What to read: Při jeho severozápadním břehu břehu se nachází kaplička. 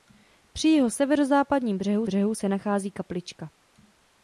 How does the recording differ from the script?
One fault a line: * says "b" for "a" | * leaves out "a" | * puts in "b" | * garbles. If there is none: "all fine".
all fine